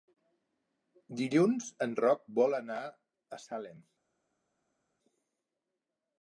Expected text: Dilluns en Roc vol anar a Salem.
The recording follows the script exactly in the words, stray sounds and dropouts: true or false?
true